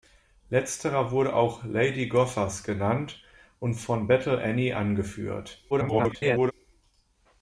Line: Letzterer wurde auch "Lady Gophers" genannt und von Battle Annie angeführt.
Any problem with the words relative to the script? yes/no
yes